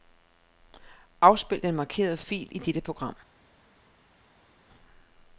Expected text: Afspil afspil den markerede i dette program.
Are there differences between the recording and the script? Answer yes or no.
yes